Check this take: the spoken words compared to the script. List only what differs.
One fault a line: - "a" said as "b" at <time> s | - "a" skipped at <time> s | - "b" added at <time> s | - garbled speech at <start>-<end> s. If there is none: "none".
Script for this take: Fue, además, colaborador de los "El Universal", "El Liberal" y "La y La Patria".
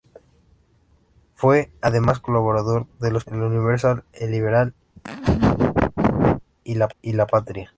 none